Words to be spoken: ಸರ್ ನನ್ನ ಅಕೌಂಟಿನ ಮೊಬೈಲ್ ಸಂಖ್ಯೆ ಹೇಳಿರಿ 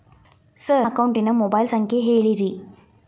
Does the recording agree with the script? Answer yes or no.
no